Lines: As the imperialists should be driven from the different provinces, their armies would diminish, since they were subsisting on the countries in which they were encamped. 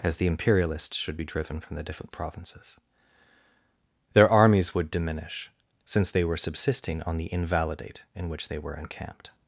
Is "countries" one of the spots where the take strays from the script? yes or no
yes